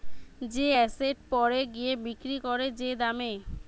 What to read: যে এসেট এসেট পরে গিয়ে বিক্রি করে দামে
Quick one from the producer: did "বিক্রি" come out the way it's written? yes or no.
yes